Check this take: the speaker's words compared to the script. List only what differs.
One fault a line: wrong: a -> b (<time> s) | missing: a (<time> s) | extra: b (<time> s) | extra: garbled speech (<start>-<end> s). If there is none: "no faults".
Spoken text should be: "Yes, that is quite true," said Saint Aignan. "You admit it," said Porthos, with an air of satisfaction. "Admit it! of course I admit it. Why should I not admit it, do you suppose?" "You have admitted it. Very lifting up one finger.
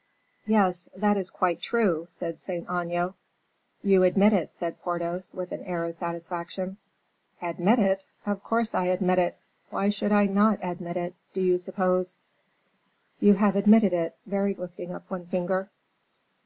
no faults